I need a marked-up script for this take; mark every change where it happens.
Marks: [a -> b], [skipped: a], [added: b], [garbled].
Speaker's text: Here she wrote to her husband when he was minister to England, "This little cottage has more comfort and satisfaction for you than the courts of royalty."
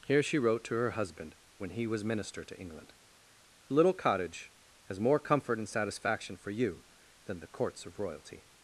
Here she wrote to her husband when he was minister to England, [skipped: "This] little cottage has more comfort and satisfaction for you than the courts of royalty."